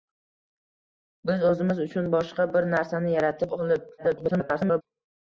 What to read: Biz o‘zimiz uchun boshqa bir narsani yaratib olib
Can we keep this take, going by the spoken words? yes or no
no